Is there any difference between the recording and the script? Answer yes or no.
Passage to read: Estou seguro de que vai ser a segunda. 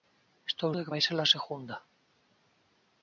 yes